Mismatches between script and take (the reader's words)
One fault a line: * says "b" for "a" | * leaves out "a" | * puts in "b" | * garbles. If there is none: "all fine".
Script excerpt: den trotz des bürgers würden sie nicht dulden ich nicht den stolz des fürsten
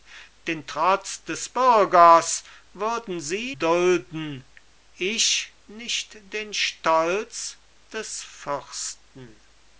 * leaves out "nicht"